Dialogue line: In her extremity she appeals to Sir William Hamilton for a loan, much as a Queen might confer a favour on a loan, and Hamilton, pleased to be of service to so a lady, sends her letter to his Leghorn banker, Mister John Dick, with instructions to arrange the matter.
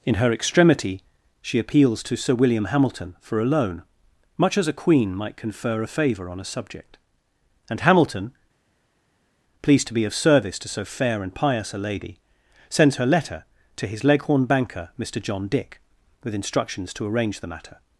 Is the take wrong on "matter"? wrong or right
right